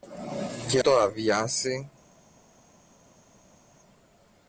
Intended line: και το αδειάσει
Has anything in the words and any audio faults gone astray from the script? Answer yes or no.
no